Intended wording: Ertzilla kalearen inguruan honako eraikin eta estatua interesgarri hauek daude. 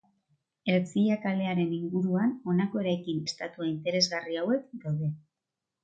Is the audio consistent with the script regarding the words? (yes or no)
no